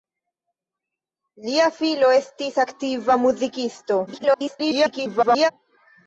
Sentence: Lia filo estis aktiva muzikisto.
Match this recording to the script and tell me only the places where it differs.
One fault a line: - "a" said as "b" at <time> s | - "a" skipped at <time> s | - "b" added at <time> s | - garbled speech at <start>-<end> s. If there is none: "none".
- garbled speech at 4.1-5.5 s